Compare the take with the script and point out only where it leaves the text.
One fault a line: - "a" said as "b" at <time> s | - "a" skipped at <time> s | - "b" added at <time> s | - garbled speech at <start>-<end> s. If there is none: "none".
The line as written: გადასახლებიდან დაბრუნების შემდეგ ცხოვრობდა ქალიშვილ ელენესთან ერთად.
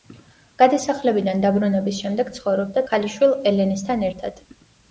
none